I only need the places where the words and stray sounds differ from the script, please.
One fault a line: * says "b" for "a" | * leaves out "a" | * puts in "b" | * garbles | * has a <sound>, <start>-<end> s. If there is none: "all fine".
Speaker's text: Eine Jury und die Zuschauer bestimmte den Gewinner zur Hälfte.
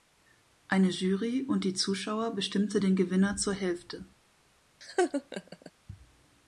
* has a laugh, 4.8-5.7 s